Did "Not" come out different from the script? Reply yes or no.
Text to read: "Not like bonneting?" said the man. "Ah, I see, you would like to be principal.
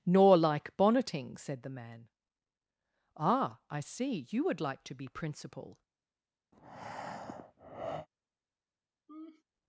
yes